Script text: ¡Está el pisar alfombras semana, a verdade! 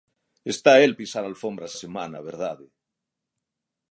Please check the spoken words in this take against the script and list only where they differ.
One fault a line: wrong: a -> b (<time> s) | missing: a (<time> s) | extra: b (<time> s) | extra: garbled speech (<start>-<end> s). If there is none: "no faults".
no faults